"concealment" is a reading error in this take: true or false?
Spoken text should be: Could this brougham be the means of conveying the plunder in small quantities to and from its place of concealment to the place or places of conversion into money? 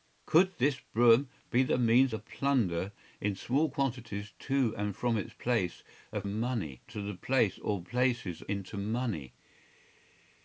true